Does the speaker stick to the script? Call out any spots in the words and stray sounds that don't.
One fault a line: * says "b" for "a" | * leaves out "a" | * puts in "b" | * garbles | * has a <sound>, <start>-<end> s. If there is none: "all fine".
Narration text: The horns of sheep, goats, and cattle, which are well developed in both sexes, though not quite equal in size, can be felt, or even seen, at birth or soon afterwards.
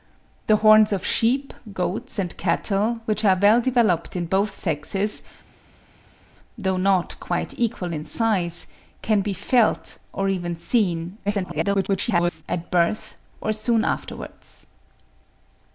* garbles